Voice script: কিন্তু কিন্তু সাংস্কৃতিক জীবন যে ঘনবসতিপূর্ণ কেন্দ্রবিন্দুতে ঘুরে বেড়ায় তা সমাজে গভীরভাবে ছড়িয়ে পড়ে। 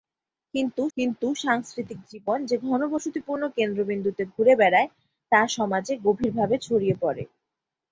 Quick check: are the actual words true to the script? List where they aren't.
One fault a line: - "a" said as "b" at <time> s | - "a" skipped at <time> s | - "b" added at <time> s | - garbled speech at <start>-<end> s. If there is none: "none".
none